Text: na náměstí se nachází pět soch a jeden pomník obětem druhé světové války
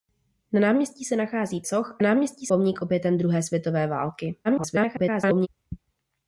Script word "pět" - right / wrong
wrong